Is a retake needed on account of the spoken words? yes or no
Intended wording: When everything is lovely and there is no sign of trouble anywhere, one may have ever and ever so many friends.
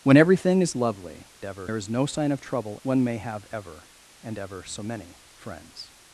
yes